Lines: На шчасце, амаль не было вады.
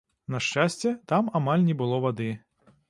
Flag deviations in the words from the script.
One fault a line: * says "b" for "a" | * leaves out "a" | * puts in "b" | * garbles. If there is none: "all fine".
* puts in "там"